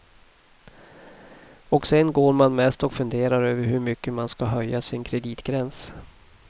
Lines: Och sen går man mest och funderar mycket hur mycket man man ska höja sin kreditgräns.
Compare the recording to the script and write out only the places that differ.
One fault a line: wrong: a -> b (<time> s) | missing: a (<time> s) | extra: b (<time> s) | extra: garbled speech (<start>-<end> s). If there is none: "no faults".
wrong: mycket -> över (3.4 s)
missing: man (4.3 s)